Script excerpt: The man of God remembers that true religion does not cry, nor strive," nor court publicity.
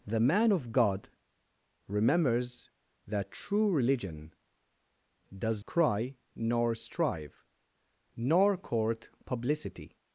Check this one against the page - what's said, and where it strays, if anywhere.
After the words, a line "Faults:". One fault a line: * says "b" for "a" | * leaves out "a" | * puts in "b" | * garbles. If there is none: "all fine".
The man of God remembers that true religion does cry, nor strive," nor court publicity.
Faults:
* leaves out "not"